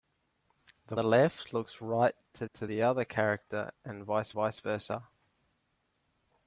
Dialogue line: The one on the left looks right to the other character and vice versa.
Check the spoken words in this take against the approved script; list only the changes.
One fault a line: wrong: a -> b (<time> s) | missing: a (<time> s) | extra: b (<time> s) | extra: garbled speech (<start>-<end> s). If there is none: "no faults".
missing: one on (1.0 s)
extra: to (2.5 s)
extra: vice (4.3 s)